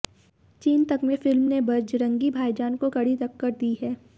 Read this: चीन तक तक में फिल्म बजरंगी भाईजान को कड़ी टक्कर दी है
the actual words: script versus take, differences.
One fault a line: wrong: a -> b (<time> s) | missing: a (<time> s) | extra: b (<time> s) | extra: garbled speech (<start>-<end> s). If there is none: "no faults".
missing: तक (1.0 s)
extra: ने (1.5 s)